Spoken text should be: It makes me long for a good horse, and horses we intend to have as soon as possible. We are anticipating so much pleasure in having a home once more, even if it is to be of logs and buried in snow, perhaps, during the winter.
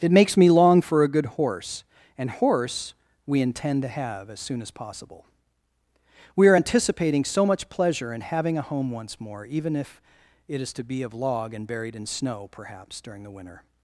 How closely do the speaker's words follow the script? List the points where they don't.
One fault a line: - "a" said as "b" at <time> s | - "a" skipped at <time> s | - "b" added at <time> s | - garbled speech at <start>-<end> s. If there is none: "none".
- "horses" said as "horse" at 2.3 s
- "logs" said as "log" at 11.1 s